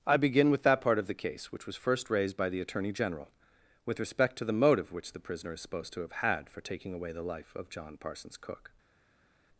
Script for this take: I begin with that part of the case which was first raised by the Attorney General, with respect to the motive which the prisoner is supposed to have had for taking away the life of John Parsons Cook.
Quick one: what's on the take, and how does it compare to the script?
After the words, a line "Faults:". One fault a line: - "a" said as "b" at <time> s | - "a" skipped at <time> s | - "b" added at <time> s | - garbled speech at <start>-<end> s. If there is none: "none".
I begin with that part of the case which was first raised by the Attorney General, with respect to the motive which the prisoner is supposed to have had for taking away the life of John Parsons Cook.
Faults:
none